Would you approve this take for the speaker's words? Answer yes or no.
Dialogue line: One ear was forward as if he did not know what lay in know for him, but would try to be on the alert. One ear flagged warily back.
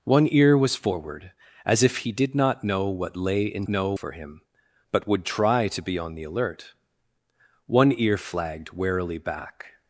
yes